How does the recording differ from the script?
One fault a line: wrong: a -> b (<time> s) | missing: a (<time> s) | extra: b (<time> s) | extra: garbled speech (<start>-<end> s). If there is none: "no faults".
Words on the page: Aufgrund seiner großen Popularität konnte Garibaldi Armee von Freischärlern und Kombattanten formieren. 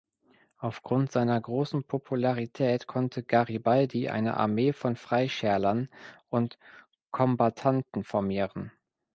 extra: eine (4.1 s)